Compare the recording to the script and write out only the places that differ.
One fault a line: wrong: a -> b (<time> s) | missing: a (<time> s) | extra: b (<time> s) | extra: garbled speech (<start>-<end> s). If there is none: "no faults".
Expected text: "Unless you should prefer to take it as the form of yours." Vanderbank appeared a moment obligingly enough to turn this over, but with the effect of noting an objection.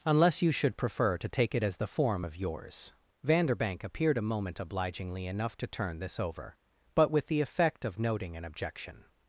no faults